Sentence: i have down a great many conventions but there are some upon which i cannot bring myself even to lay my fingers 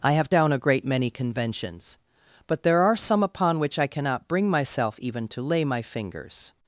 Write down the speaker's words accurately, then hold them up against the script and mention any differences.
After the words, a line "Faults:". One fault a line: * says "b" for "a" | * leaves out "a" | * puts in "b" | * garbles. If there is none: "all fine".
i have down a great many conventions but there are some upon which i cannot bring myself even to lay my fingers
Faults:
all fine